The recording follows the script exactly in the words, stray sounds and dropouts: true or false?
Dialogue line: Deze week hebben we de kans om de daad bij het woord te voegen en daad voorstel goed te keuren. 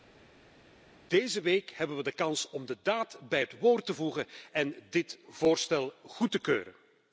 false